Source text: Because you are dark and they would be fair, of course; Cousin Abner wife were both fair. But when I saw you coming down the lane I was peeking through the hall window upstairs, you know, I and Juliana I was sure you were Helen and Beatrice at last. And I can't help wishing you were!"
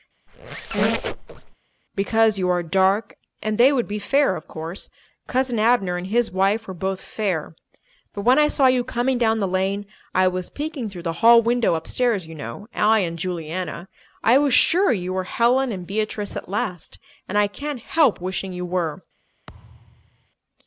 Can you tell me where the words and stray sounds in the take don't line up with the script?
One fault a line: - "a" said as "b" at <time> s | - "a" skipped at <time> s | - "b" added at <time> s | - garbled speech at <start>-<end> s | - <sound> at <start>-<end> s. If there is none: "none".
- squeak at 0.3-1.6 s
- "and his" added at 5.9 s
- thud at 19.5-20.3 s